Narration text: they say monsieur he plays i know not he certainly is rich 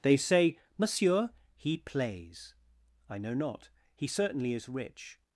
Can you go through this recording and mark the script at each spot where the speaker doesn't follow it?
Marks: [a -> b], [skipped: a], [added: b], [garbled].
they say monsieur he plays i know not he certainly is rich